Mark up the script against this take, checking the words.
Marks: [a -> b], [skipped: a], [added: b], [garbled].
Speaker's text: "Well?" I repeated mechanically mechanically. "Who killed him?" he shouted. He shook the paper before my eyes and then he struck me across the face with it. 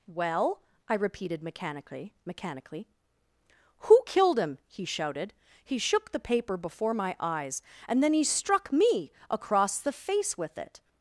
"Well?" I repeated mechanically mechanically. "Who killed him?" he shouted. He shook the paper before my eyes and then he struck me across the face with it.